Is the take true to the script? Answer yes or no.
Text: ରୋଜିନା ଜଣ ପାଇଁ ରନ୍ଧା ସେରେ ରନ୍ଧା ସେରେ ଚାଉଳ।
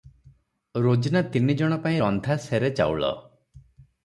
no